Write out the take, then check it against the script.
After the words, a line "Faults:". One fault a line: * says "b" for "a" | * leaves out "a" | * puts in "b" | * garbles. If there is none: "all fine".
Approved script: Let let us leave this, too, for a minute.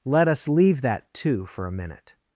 Let us leave that, too, for a minute.
Faults:
* leaves out "let"
* says "that" for "this"